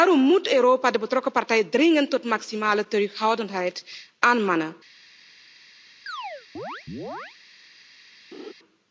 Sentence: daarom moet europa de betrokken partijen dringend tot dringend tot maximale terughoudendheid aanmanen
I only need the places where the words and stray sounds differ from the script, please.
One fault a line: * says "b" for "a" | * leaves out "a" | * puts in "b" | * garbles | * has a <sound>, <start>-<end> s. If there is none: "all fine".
* leaves out "dringend tot"
* has a chirp, 6.1-7.4 s
* has a laugh, 8.3-8.5 s